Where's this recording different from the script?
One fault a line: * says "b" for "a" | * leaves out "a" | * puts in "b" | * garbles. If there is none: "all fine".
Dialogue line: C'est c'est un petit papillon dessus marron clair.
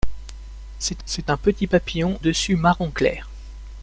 all fine